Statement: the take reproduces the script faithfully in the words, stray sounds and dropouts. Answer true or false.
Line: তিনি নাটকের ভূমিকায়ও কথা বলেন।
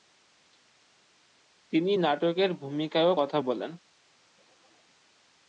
true